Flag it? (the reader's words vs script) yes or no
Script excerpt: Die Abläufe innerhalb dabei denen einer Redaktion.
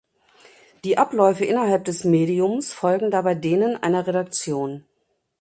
yes